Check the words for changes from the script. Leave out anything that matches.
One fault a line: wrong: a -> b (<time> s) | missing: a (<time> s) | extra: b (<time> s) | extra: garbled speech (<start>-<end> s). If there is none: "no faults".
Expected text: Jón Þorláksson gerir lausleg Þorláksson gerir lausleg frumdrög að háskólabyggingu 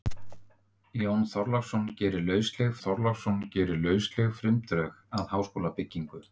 no faults